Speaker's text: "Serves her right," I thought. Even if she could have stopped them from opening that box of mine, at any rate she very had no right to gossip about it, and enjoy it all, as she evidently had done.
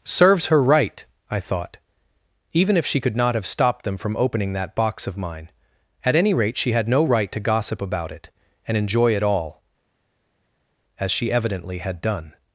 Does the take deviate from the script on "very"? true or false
true